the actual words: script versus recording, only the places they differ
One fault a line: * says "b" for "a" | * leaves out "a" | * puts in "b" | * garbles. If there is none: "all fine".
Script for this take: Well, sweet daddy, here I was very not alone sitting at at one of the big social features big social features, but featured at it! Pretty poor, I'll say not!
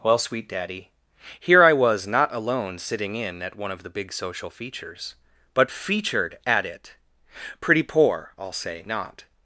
* leaves out "very"
* says "in" for "at"
* leaves out "big social features"